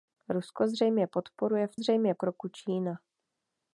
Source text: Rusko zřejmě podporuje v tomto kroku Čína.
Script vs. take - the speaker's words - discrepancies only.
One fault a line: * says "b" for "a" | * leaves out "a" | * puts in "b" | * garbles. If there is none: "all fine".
* says "zřejmě" for "tomto"